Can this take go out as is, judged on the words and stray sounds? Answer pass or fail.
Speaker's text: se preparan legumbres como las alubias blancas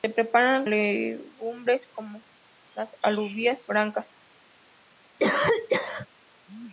fail